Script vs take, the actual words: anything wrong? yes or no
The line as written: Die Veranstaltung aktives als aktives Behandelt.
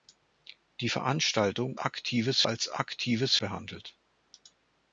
no